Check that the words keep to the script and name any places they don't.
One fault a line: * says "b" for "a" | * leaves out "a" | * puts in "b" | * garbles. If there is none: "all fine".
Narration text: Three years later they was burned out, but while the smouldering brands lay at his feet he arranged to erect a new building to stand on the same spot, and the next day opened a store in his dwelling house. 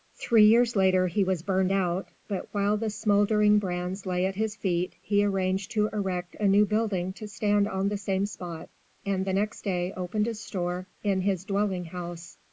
* says "he" for "they"